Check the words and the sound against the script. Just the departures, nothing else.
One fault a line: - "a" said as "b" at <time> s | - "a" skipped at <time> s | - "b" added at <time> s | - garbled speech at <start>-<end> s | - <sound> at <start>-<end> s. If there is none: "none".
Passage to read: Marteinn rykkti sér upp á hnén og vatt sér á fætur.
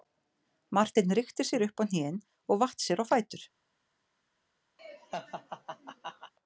- laugh at 4.8-6.3 s